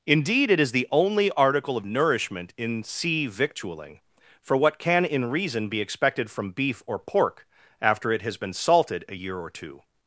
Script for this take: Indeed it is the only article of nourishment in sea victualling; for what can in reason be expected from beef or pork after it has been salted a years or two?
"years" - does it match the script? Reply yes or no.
no